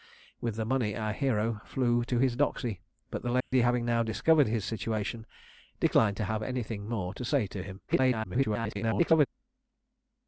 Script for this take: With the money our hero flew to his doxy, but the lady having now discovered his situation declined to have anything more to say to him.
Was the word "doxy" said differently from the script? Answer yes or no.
no